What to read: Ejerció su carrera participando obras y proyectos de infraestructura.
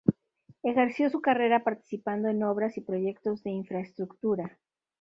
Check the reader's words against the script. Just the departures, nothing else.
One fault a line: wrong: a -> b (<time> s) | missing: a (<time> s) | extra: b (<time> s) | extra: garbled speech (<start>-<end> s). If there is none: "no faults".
extra: en (2.3 s)